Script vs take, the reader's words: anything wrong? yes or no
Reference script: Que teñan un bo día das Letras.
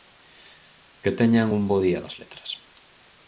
no